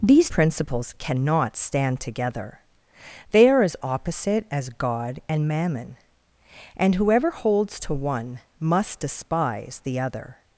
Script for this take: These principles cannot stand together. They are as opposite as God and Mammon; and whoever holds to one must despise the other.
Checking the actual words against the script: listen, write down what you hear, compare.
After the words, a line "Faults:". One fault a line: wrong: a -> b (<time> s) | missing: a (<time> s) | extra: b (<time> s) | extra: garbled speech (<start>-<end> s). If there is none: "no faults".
These principles cannot stand together. They are as opposite as God and Mammon; and whoever holds to one must despise the other.
Faults:
no faults